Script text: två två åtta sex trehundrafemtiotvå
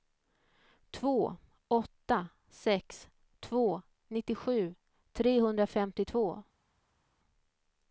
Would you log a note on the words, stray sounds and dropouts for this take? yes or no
yes